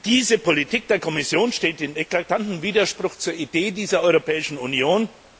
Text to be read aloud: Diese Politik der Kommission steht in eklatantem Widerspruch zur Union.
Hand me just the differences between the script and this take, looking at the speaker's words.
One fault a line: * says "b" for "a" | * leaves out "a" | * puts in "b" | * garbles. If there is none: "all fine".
* puts in "Idee dieser Europäischen"